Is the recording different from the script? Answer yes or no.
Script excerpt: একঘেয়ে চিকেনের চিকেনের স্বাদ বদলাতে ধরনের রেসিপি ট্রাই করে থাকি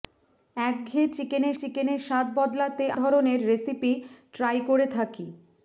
no